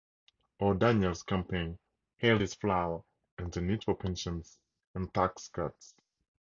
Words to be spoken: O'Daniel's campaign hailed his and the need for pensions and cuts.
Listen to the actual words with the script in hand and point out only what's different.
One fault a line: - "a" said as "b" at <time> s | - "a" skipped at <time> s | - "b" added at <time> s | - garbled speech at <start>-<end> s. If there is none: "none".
- "flour" added at 2.5 s
- "tax" added at 5.1 s